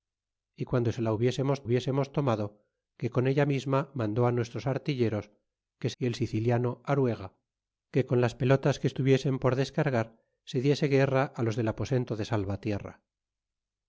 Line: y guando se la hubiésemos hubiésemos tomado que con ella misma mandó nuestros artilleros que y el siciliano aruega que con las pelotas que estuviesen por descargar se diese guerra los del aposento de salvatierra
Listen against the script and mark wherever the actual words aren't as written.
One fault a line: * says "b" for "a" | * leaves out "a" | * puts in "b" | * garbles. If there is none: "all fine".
all fine